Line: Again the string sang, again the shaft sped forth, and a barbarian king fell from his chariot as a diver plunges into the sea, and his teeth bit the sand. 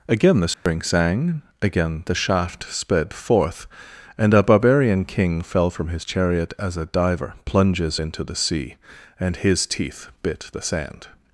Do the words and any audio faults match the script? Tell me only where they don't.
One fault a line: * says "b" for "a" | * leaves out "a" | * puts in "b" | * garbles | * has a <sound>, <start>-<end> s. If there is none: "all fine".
* has a dropout, 0.5-0.7 s